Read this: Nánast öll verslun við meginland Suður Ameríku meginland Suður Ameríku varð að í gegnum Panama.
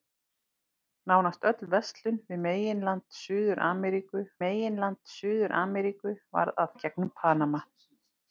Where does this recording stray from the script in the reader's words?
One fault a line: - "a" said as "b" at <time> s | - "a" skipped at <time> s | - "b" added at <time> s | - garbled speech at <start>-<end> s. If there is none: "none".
none